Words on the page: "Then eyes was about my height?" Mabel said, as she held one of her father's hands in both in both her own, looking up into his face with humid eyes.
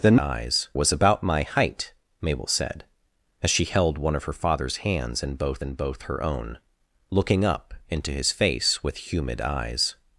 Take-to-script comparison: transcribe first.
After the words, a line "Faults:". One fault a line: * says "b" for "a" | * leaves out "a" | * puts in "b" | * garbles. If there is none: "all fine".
"Then eyes was about my height?" Mabel said, as she held one of her father's hands in both in both her own, looking up into his face with humid eyes.
Faults:
all fine